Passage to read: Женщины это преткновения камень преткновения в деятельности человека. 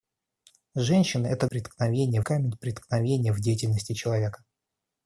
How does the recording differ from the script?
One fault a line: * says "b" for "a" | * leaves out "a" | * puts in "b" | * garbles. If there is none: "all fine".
all fine